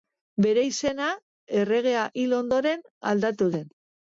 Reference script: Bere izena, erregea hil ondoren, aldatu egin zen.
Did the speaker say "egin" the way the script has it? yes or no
no